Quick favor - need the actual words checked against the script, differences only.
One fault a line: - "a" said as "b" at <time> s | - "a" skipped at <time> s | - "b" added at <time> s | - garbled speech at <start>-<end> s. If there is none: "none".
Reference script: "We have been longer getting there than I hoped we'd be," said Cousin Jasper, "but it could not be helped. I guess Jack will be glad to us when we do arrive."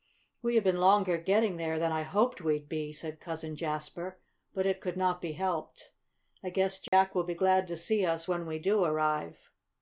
- "see" added at 7.8 s